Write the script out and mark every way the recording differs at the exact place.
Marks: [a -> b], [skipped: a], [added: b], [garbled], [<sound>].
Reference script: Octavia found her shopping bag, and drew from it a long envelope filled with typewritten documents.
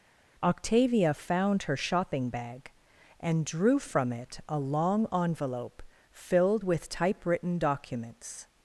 Octavia found her shopping bag, and drew from it a long envelope filled with typewritten documents.